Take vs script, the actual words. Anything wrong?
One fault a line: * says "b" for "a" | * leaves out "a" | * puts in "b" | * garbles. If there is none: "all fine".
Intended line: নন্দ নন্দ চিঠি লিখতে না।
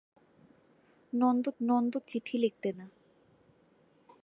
all fine